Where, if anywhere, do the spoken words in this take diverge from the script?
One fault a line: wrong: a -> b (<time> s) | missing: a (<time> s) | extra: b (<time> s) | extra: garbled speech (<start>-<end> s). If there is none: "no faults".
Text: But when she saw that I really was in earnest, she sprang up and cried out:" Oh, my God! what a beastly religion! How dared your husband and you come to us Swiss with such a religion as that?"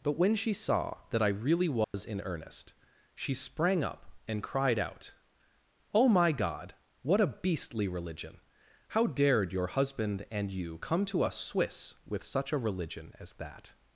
no faults